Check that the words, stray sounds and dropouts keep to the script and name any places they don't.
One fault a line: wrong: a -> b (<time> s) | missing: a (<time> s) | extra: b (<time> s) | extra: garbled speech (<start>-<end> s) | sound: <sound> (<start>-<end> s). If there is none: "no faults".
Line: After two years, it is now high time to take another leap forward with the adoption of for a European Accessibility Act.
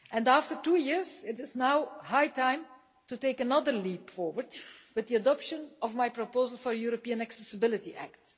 extra: my proposal (6.0 s)